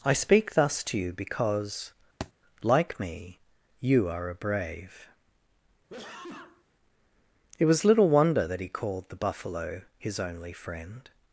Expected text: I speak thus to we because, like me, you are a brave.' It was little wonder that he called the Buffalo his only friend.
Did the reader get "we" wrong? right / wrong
wrong